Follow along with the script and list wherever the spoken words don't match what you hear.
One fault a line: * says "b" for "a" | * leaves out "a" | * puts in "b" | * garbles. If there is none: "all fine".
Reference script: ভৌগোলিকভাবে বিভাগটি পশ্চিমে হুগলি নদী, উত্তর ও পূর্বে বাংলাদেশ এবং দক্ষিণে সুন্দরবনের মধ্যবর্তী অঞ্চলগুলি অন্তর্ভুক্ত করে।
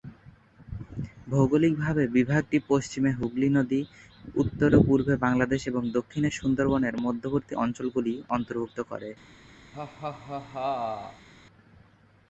all fine